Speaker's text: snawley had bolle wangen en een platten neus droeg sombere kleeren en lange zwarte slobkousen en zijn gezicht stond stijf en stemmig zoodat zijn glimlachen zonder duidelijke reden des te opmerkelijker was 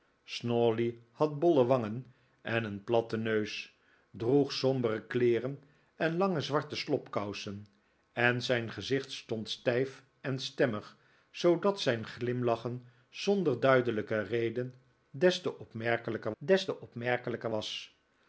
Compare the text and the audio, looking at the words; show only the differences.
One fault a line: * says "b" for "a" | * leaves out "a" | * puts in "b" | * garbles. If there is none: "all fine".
* puts in "des te opmerkelijker"